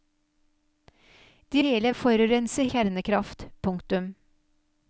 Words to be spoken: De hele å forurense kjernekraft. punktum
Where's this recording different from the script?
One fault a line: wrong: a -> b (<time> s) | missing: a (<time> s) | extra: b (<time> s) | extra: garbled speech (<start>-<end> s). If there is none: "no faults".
no faults